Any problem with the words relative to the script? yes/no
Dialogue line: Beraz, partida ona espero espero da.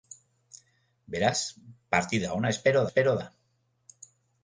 no